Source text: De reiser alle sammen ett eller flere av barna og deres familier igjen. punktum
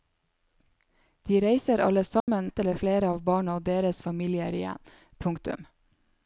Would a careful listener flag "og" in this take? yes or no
no